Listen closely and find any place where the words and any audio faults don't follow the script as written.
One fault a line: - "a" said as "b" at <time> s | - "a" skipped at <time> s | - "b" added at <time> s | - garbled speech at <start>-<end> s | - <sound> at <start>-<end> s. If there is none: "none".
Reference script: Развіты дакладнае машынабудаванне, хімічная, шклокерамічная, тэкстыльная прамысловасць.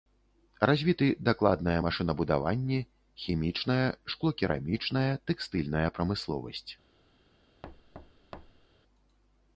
- thud at 7.6-8.7 s